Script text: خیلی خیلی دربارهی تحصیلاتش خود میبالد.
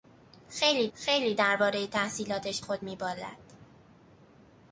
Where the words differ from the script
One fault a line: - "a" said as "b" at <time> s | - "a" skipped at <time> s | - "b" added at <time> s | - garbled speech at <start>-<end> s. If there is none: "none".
none